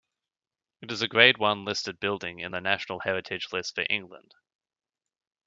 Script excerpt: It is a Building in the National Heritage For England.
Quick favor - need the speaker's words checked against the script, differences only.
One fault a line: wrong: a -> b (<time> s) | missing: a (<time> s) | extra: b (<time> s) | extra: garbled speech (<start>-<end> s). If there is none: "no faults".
extra: Grade One listed (1.1 s)
extra: List (3.5 s)